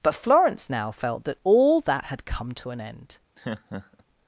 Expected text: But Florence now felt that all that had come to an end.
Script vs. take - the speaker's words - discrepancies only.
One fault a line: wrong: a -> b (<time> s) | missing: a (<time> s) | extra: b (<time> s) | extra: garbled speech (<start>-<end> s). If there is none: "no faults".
no faults